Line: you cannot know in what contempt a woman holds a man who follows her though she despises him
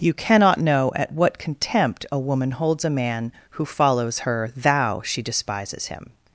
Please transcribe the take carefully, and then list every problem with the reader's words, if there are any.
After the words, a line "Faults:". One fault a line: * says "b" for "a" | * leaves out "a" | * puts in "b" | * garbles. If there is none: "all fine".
you cannot know at what contempt a woman holds a man who follows her thou she despises him
Faults:
* says "at" for "in"
* says "thou" for "though"